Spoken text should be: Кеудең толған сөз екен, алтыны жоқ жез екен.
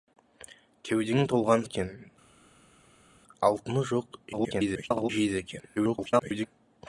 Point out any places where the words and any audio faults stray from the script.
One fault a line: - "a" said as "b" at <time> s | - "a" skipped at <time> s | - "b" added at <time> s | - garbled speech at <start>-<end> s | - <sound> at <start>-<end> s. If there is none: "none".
- "сөз" skipped at 1.6 s
- garbled speech at 4.3-5.1 s
- garbled speech at 5.8-6.5 s